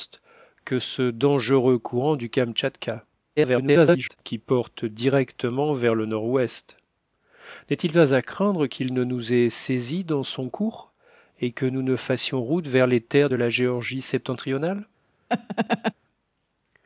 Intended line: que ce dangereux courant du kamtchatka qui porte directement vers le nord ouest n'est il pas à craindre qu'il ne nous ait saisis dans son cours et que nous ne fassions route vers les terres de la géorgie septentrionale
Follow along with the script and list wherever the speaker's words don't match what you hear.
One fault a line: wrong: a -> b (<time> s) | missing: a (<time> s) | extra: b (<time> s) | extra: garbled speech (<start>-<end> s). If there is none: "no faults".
extra: garbled speech (3.4-4.2 s)